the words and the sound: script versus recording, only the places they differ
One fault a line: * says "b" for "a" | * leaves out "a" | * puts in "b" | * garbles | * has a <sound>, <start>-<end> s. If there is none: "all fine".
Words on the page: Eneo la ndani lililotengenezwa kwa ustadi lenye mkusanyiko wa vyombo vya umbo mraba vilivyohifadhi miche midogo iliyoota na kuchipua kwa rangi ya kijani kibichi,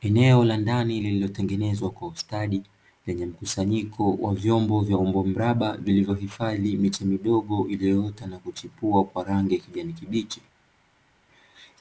all fine